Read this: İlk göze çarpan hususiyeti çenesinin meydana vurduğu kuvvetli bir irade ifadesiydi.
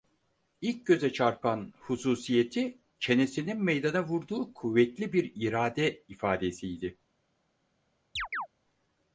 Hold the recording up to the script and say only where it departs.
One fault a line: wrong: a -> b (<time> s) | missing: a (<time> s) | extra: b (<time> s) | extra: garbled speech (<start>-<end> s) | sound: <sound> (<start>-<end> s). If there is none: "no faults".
sound: chirp (8.2-8.5 s)